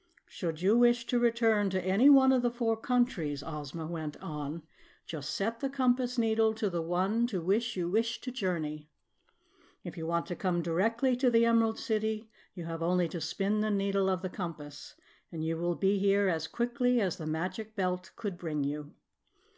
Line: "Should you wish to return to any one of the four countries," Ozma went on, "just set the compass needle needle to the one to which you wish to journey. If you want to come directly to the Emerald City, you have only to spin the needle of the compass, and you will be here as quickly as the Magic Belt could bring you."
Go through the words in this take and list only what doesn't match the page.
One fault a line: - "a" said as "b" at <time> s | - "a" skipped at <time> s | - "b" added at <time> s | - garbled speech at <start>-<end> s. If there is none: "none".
- "needle" skipped at 6.5 s